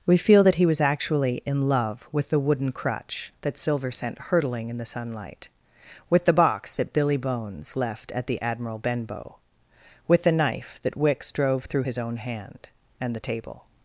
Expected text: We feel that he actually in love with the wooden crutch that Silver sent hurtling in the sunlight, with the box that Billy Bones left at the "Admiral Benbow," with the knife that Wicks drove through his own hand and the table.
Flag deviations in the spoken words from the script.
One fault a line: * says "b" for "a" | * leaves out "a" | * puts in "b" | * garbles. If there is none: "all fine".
* puts in "was"